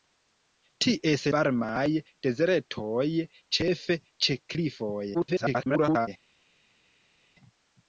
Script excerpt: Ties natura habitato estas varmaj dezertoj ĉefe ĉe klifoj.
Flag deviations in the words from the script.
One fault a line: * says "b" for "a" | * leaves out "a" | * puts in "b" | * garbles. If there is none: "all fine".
* leaves out "natura habitato estas"
* garbles